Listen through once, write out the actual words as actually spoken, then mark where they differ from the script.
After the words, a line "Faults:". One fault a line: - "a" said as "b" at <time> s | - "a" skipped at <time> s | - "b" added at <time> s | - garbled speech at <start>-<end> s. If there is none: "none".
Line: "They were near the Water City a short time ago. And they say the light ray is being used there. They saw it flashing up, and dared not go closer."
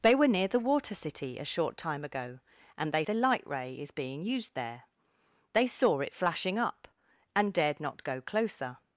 "They were near the Water City a short time ago. And they the light ray is being used there. They saw it flashing up, and dared not go closer."
Faults:
- "say" skipped at 3.0 s